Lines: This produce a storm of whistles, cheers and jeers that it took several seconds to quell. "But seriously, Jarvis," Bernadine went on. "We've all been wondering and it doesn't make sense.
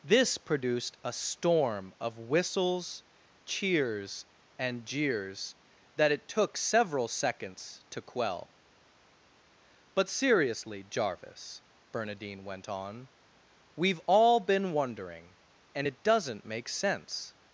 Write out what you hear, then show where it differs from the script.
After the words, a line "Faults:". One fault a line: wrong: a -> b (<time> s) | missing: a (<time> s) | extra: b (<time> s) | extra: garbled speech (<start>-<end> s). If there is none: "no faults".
This produced a storm of whistles, cheers and jeers that it took several seconds to quell. "But seriously, Jarvis," Bernadine went on. "We've all been wondering and it doesn't make sense.
Faults:
wrong: produce -> produced (0.4 s)